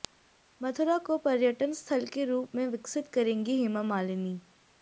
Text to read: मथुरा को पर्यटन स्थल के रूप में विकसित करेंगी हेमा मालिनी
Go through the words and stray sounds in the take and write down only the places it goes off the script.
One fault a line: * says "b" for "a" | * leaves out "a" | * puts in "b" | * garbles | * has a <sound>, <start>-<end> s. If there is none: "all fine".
all fine